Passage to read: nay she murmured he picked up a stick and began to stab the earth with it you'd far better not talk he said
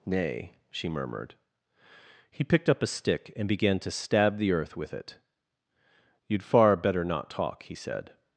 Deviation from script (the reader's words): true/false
false